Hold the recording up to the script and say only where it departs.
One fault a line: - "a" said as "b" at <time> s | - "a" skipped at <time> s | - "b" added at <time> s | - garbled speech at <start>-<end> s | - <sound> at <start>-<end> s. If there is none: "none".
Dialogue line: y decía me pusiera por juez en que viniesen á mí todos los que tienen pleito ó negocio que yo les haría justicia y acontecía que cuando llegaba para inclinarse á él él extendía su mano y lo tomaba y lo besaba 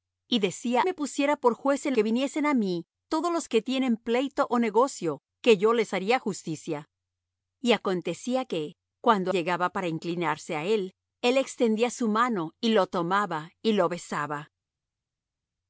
none